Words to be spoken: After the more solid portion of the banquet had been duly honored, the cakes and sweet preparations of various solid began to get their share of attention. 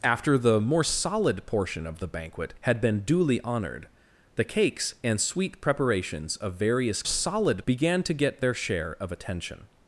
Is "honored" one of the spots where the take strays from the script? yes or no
no